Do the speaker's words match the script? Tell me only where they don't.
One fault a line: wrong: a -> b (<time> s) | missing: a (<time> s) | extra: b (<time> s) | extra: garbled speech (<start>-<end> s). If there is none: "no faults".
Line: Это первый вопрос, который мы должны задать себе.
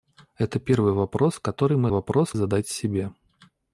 wrong: должны -> вопрос (1.9 s)